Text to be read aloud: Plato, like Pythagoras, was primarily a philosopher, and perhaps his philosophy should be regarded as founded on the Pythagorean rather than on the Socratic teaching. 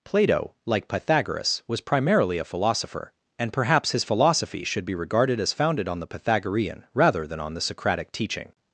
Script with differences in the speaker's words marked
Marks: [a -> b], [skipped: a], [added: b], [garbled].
Plato, like Pythagoras, was primarily a philosopher, and perhaps his philosophy should be regarded as founded on the Pythagorean rather than on the Socratic teaching.